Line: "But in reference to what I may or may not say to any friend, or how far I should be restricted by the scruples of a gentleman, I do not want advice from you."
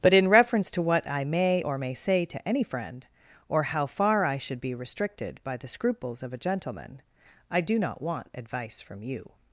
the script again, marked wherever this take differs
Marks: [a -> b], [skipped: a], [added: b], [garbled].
"But in reference to what I may or may [skipped: not] say to any friend, or how far I should be restricted by the scruples of a gentleman, I do not want advice from you."